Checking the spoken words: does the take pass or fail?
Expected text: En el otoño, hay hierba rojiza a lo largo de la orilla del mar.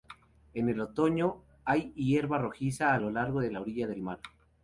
pass